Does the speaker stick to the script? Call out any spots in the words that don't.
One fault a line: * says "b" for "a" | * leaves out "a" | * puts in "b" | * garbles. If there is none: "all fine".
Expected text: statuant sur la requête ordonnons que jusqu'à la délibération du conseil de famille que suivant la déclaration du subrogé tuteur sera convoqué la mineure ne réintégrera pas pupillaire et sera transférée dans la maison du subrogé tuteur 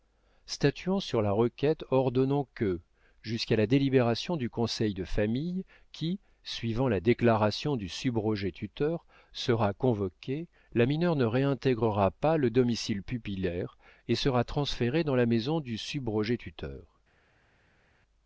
* says "qui" for "que"
* puts in "le domicile"